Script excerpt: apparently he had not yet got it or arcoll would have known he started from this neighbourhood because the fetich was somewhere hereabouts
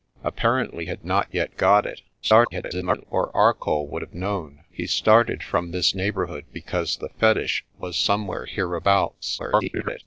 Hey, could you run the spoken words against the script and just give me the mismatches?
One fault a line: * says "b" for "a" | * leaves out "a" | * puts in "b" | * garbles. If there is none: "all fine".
* leaves out "he"
* garbles
* garbles